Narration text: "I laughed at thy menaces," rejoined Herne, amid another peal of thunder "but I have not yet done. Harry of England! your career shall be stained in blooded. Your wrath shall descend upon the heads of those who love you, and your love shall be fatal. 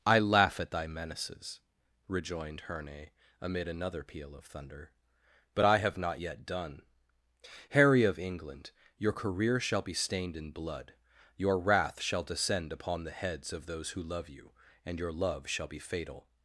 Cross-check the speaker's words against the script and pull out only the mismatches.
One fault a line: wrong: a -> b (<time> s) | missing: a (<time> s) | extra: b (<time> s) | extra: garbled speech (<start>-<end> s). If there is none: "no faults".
wrong: laughed -> laugh (0.2 s)
wrong: blooded -> blood (10.5 s)